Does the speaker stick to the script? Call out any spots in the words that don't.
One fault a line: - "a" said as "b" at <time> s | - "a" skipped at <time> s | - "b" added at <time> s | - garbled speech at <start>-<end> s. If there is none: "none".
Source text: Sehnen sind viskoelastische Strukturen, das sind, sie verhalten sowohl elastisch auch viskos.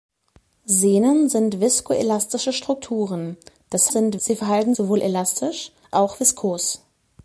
none